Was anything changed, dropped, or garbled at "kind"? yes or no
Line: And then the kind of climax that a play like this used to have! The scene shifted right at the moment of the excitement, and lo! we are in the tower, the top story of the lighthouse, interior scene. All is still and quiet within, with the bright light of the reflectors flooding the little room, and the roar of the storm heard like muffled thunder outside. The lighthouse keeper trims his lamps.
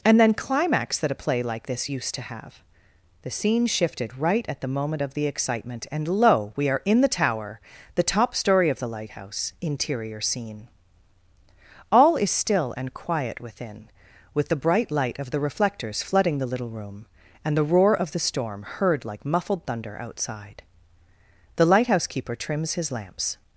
yes